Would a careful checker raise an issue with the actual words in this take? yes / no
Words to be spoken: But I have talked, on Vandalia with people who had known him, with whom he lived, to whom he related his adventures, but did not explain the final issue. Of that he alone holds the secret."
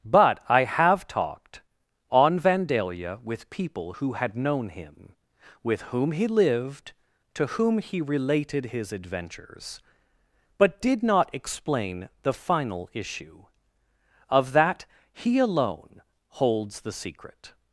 no